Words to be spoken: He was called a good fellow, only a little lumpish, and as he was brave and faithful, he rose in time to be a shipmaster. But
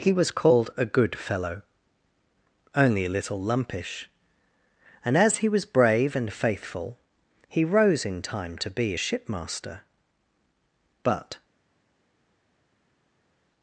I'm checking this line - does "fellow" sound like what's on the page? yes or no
yes